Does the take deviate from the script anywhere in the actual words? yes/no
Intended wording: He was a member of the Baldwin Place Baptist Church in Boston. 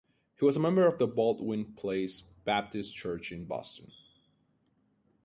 no